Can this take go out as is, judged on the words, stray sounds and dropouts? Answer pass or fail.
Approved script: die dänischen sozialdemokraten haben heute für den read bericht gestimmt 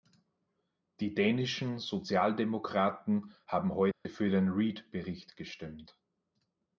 fail